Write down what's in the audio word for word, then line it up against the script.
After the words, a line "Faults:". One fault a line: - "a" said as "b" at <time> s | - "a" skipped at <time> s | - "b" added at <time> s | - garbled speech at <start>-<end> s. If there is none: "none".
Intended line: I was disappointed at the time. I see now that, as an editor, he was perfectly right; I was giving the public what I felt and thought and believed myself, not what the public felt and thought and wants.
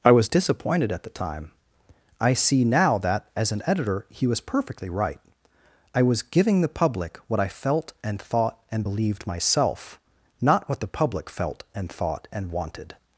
I was disappointed at the time. I see now that, as an editor, he was perfectly right; I was giving the public what I felt and thought and believed myself, not what the public felt and thought and wanted.
Faults:
- "wants" said as "wanted" at 12.5 s